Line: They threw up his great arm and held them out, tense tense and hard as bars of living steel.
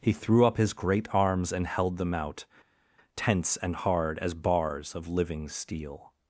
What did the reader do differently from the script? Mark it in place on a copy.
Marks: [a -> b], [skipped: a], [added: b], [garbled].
[They -> He] threw up his great [arm -> arms] and held them out, tense [skipped: tense] and hard as bars of living steel.